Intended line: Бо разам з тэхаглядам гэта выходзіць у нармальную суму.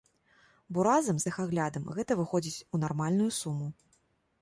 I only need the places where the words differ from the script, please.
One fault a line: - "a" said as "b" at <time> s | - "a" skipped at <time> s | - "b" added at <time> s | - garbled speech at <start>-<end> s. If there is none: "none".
none